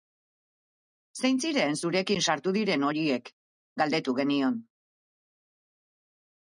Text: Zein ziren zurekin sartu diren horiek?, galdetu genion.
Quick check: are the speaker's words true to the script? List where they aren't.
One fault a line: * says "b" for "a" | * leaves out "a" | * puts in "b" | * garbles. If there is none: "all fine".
all fine